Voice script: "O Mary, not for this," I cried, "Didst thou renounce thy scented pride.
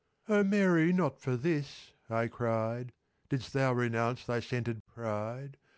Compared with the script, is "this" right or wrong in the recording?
right